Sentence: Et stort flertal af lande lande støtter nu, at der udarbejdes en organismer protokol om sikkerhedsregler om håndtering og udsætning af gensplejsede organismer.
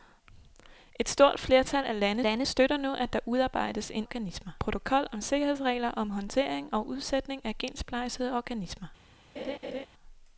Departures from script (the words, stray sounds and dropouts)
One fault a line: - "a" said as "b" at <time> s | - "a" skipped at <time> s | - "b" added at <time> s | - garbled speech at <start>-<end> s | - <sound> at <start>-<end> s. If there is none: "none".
- laugh at 9.4-9.9 s